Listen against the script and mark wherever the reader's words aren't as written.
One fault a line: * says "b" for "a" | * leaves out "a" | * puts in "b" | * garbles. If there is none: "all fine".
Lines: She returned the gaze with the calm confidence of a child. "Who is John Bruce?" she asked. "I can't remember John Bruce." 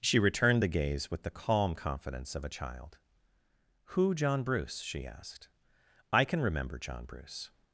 * leaves out "is"
* says "can" for "can't"